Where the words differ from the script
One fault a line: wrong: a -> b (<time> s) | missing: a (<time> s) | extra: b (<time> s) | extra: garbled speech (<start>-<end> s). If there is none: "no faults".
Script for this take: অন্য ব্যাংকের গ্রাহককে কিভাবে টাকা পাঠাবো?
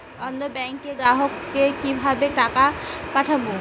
no faults